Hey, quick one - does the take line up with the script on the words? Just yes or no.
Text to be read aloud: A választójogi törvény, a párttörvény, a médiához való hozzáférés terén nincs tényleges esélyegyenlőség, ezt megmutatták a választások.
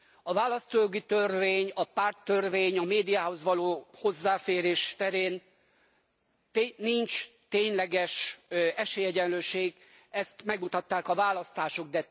yes